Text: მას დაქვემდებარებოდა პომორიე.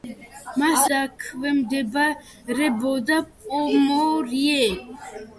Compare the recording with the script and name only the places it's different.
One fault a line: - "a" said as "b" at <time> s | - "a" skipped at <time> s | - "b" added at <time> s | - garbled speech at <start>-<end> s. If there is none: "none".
none